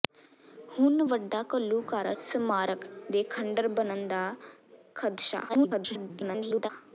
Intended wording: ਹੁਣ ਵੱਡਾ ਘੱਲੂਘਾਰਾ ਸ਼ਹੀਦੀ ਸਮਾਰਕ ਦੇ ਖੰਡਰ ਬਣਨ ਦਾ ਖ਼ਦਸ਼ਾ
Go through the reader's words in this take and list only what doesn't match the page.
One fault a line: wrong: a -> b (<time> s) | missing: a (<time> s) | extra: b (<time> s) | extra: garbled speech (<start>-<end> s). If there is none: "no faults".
missing: ਸ਼ਹੀਦੀ (2.1 s)
extra: garbled speech (5.5-6.7 s)